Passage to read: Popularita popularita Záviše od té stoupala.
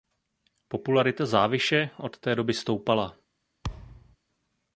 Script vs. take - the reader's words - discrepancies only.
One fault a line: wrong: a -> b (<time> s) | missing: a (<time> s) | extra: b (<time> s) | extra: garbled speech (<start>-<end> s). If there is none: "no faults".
missing: popularita (1.2 s)
extra: doby (2.4 s)